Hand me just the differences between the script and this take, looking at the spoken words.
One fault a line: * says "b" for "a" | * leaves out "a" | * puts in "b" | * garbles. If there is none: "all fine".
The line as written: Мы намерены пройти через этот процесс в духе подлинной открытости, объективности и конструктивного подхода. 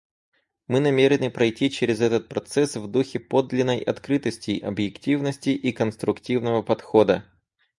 all fine